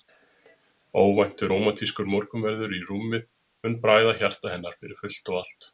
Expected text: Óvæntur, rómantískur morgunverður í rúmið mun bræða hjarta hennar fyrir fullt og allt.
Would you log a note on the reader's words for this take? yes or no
no